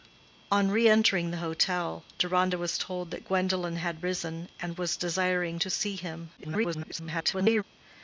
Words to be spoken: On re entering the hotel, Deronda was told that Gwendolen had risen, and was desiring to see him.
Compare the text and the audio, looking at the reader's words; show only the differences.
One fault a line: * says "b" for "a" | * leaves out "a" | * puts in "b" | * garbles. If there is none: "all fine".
* garbles